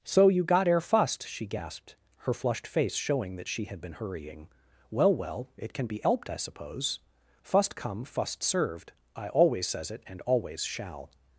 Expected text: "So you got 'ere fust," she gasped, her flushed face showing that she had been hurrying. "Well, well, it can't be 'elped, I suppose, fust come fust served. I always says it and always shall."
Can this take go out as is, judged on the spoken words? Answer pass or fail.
fail